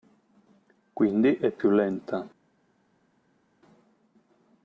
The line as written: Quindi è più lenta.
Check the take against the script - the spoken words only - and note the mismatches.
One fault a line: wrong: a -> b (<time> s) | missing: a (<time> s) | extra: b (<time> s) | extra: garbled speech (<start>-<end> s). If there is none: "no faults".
no faults